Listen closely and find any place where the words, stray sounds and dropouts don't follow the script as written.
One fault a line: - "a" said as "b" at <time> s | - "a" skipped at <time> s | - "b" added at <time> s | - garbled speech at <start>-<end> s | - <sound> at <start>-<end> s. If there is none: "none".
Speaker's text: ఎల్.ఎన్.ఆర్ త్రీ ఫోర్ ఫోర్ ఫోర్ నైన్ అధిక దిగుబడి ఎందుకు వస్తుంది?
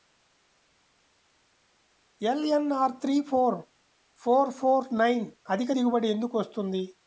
none